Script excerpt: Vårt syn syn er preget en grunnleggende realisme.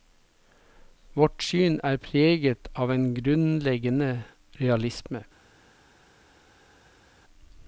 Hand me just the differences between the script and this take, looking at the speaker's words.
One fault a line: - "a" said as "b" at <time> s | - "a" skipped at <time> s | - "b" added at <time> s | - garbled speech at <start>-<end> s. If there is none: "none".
- "syn" skipped at 1.8 s
- "av" added at 2.7 s